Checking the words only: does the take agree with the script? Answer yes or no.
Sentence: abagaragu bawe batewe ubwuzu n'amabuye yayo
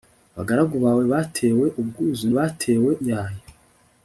no